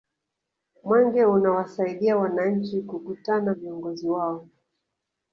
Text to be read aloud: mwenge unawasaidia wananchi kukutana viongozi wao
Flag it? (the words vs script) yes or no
no